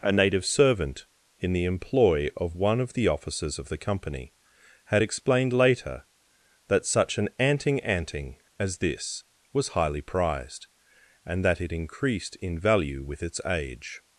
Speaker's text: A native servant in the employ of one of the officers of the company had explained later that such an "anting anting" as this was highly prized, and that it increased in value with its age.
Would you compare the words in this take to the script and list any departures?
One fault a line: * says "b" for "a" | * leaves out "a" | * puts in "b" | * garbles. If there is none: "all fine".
all fine